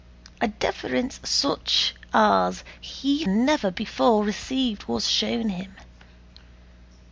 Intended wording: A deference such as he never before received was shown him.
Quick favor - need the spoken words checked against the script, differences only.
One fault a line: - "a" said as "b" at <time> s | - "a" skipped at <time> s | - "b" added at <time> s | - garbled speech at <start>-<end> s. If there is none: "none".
none